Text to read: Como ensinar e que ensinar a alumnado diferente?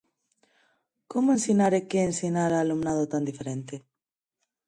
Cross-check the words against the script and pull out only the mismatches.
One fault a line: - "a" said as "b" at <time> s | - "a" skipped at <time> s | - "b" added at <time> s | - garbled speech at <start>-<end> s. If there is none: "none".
- "tan" added at 3.1 s